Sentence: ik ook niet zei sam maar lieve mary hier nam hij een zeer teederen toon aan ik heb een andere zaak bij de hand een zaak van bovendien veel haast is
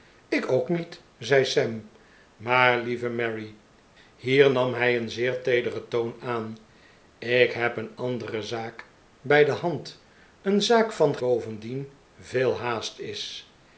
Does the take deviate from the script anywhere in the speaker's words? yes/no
no